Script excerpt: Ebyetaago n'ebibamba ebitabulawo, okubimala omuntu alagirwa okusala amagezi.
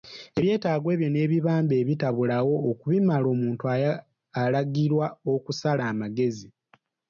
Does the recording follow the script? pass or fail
fail